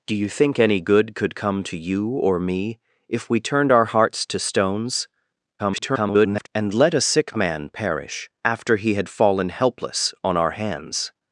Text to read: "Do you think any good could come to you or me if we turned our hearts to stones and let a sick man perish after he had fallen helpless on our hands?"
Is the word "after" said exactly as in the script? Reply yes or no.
yes